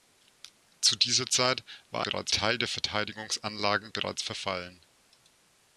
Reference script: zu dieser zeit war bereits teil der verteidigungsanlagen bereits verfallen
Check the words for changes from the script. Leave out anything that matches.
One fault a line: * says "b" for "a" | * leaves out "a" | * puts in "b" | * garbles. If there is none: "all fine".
all fine